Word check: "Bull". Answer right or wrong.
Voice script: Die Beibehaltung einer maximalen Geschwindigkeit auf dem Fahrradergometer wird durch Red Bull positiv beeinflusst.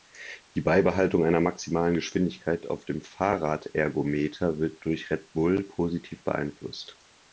right